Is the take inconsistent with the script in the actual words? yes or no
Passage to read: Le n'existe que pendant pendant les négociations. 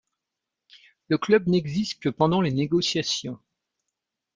yes